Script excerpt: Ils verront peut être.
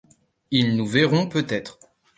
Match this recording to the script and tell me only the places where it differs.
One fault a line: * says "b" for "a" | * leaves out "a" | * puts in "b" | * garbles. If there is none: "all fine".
* puts in "nous"